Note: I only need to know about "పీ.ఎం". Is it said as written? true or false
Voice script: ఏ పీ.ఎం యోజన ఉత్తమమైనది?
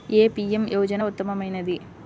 true